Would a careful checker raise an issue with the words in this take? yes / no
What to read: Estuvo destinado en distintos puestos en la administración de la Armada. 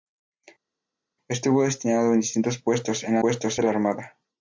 yes